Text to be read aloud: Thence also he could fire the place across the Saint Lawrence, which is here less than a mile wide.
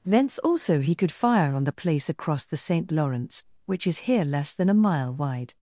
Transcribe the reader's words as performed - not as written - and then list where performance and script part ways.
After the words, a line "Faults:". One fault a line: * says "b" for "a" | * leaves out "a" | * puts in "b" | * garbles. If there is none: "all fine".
Thence also he could fire on the place across the Saint Lawrence, which is here less than a mile wide.
Faults:
* puts in "on"